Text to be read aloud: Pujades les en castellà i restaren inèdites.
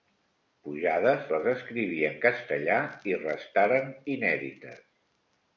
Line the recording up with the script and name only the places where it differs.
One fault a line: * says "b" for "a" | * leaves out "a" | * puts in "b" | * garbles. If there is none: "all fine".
* puts in "escriví"